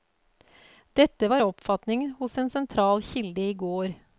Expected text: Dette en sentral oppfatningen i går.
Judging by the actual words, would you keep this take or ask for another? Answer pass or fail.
fail